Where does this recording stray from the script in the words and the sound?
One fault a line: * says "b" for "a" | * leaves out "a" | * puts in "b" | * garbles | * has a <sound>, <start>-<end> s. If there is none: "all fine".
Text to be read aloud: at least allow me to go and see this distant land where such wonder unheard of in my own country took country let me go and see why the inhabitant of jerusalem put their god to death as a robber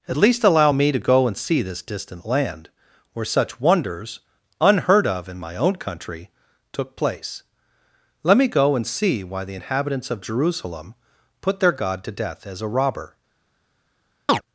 * says "wonders" for "wonder"
* says "place" for "country"
* says "inhabitants" for "inhabitant"
* has a chirp, 14.3-14.4 s